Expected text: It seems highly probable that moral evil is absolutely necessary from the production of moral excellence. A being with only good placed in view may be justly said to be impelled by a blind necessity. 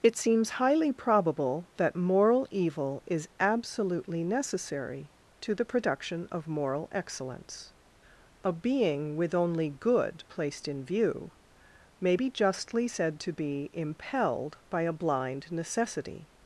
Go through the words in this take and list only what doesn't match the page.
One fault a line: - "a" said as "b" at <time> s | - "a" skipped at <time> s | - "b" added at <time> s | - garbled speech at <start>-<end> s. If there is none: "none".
- "from" said as "to" at 5.4 s